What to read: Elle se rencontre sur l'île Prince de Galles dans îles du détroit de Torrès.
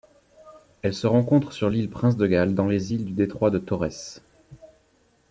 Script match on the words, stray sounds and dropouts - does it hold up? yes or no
no